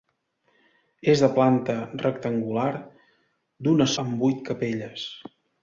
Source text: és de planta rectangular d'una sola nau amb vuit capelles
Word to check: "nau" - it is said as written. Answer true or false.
false